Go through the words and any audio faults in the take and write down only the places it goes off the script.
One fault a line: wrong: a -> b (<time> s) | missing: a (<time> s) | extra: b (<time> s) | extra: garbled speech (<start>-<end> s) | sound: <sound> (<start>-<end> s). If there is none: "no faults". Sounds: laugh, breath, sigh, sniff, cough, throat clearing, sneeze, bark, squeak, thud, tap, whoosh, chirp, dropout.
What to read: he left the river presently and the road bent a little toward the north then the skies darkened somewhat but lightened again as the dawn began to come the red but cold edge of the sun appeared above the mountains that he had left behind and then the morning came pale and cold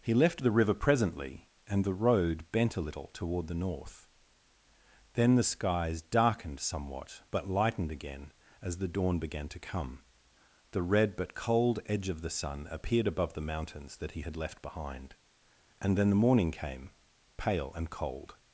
no faults